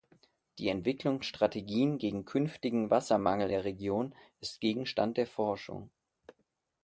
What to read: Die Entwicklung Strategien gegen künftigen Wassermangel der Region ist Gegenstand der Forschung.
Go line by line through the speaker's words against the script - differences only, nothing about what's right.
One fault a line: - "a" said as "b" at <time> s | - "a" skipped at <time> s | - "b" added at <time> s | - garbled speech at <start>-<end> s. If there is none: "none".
none